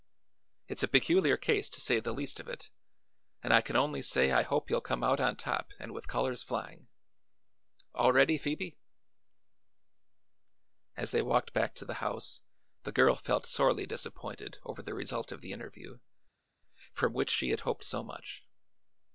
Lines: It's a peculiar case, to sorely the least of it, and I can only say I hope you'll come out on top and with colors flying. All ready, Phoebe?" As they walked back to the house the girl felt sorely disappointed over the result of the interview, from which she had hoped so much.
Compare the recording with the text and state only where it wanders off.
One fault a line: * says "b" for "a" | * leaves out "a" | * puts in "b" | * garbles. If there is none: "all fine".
* says "say" for "sorely"